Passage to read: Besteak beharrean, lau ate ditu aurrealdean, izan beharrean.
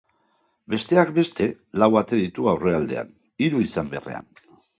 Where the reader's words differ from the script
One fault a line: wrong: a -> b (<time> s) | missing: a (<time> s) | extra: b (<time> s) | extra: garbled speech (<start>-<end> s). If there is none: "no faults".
wrong: beharrean -> beste (1.2 s)
extra: hiru (3.5 s)